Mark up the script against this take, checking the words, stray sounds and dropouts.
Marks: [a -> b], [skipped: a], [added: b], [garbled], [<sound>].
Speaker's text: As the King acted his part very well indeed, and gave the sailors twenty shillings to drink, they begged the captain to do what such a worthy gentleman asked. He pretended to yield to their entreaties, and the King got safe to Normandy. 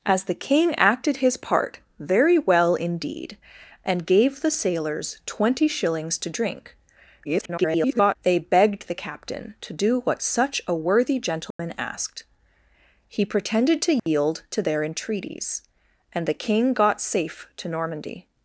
As the King acted his part very well indeed, and gave the sailors twenty shillings to drink, [garbled] they begged the captain to do what such a worthy gentleman [dropout] asked. He pretended to yield [dropout] to their entreaties, and the King got safe to Normandy.